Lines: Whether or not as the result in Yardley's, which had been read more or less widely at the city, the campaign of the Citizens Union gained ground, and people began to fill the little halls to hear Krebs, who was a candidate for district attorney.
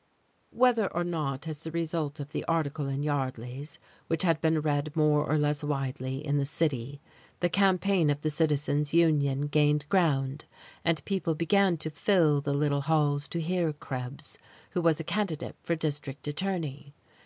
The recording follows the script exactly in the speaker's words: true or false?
false